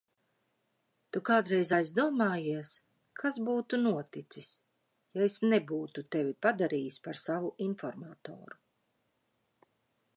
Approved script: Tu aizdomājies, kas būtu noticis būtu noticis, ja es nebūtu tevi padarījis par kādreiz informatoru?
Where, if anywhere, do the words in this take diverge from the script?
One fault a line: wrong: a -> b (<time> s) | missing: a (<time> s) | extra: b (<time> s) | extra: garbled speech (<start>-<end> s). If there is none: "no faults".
extra: kādreiz (1.3 s)
missing: būtu noticis (4.5 s)
wrong: kādreiz -> savu (7.2 s)